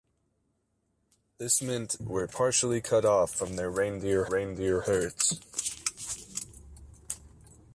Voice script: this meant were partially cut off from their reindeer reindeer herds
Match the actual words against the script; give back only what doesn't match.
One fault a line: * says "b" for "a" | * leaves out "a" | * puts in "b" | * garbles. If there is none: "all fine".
all fine